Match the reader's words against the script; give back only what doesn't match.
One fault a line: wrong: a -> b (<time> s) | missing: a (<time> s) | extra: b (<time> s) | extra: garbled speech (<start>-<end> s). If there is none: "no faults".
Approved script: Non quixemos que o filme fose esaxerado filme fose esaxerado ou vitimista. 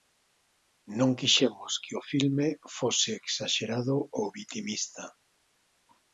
missing: filme fose esaxerado (4.0 s)